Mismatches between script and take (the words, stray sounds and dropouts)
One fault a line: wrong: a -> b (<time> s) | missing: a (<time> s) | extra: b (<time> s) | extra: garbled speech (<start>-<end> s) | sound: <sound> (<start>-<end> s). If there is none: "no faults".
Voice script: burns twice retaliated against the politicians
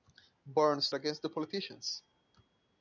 missing: twice retaliated (0.9 s)